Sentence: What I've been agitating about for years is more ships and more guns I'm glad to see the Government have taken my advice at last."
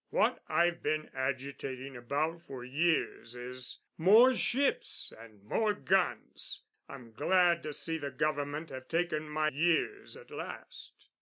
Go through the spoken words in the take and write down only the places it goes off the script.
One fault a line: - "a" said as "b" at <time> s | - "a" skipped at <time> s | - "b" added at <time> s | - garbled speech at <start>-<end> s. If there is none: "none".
- "advice" said as "years" at 9.5 s